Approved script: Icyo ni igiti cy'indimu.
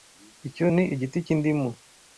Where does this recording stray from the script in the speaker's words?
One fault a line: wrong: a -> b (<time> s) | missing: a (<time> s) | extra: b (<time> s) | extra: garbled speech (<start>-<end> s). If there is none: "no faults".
no faults